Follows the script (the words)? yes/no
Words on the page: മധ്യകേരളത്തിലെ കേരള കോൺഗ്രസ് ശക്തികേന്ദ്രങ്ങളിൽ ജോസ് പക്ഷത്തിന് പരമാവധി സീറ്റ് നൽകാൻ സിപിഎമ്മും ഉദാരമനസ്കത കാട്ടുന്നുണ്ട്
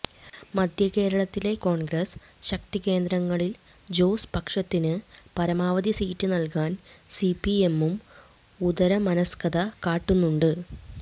no